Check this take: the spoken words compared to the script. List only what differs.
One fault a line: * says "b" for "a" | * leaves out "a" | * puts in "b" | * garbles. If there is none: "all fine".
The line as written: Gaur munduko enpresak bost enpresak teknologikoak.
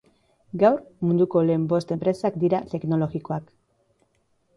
* says "lehen" for "enpresak"
* puts in "dira"